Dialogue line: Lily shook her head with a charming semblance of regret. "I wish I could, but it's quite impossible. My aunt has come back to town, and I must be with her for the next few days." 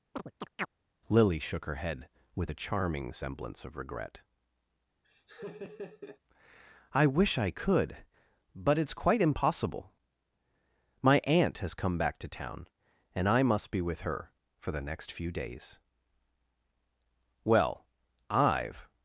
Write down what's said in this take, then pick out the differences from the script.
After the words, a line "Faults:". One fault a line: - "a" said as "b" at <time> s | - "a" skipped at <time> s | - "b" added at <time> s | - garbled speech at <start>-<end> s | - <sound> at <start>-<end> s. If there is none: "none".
Lily shook her head with a charming semblance of regret. "I wish I could, but it's quite impossible. My aunt has come back to town, and I must be with her for the next few days." "Well, I've
Faults:
- chirp at 0.1-0.7 s
- laugh at 5.0-6.2 s
- "Well I've" added at 17.4 s